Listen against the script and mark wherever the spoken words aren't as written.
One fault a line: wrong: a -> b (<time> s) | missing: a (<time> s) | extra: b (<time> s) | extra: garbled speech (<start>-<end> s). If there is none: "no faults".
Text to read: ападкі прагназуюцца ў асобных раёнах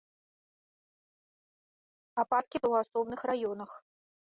missing: прагназуюцца (2.6 s)